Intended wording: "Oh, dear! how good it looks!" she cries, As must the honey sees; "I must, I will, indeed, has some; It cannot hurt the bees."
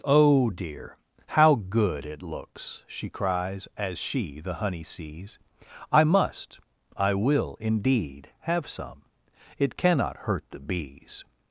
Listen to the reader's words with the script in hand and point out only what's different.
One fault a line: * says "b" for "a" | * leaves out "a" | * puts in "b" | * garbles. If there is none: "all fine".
* says "she" for "must"
* says "have" for "has"